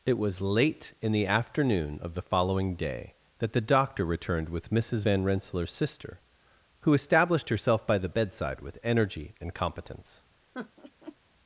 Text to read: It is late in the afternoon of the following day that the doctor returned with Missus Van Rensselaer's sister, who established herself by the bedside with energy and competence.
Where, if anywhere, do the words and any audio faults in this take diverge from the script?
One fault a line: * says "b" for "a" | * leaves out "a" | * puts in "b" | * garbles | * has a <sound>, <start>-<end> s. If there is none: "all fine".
* says "was" for "is"
* has a laugh, 10.5-11.2 s